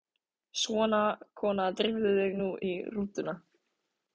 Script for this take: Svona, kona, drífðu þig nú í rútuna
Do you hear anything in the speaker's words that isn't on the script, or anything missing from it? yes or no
no